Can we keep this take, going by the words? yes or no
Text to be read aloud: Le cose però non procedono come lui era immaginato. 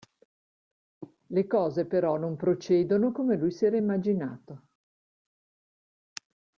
no